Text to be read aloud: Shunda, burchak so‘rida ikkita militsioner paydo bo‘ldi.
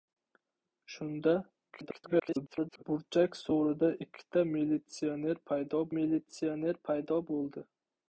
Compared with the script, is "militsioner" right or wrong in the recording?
right